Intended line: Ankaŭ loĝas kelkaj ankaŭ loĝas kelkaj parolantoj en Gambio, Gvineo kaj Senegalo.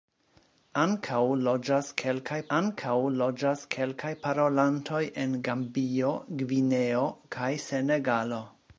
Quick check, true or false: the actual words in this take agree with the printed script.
true